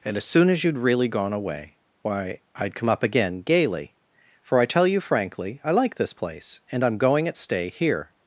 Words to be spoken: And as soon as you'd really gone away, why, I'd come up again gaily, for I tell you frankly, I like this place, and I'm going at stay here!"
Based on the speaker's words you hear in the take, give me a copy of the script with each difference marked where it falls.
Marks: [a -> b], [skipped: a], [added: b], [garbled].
And as soon as you'd really gone away, why, I'd come up again gaily, for I tell you frankly, I like this place, and I'm going at stay here!"